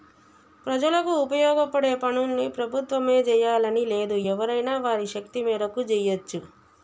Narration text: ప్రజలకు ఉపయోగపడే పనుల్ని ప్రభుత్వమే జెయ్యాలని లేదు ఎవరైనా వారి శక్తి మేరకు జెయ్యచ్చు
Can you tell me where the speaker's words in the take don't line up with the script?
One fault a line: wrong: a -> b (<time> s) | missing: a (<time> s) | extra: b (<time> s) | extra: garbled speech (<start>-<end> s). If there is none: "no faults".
no faults